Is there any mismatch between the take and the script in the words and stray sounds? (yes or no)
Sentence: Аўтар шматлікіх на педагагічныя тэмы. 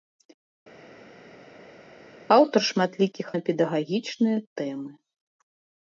no